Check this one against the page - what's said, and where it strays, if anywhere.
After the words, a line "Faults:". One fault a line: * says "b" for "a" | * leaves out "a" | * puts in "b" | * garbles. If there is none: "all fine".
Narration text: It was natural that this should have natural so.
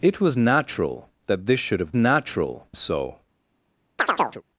It was natural that this should have natural so.
Faults:
all fine